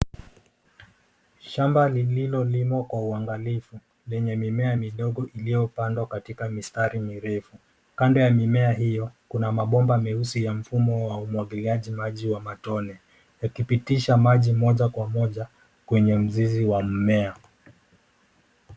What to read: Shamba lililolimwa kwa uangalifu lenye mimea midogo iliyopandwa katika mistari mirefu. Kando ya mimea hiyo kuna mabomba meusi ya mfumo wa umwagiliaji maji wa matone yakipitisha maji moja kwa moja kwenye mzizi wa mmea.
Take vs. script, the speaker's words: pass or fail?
pass